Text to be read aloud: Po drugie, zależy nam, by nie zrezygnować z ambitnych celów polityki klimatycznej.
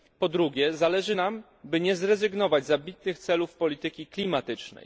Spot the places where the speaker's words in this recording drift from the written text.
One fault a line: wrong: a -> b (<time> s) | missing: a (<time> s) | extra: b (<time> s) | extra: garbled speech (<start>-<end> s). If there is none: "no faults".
no faults